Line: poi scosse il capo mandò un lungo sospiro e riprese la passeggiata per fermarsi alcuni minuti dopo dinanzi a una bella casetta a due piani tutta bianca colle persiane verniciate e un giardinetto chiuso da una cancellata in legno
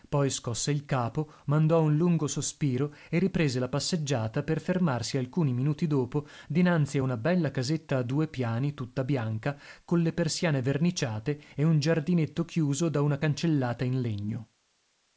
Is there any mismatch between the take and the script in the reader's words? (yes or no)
no